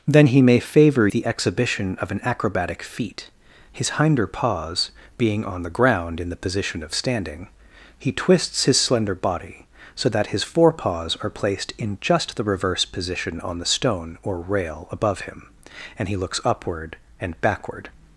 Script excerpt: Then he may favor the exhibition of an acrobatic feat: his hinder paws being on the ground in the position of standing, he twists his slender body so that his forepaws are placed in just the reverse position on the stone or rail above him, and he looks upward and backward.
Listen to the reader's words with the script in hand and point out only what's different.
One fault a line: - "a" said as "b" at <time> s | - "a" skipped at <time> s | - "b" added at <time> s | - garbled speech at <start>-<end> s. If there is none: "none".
none